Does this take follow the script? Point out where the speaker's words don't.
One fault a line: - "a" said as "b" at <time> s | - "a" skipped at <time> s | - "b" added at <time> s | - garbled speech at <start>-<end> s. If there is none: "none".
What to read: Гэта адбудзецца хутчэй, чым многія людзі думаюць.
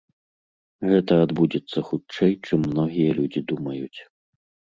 none